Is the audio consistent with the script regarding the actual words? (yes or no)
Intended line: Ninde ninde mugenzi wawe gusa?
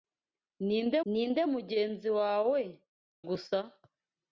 yes